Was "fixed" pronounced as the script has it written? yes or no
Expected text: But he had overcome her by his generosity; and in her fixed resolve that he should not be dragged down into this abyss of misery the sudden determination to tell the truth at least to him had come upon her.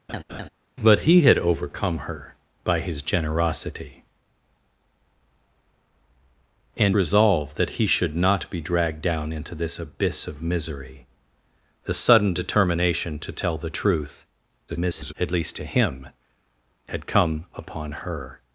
no